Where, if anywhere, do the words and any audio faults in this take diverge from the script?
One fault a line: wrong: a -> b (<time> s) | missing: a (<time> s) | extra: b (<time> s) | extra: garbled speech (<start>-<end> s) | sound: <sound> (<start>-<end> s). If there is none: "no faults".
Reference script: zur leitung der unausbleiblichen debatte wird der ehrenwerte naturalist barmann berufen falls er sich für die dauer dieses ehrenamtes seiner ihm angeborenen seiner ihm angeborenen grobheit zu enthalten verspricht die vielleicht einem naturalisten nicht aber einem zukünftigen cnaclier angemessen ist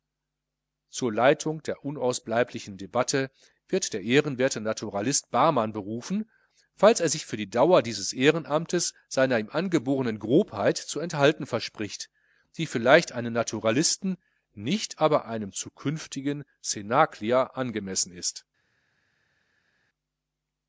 missing: seiner ihm angeborenen (10.2 s)